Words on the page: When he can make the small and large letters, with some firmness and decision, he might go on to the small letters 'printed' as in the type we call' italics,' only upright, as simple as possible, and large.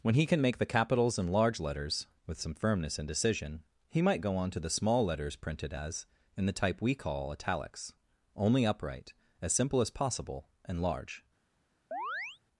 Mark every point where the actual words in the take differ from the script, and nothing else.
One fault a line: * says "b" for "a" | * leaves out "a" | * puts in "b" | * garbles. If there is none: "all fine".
* says "capitals" for "small"